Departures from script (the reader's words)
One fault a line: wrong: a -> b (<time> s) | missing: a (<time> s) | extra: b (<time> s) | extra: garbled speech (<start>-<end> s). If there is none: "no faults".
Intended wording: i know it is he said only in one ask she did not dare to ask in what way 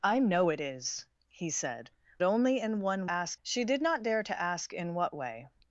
no faults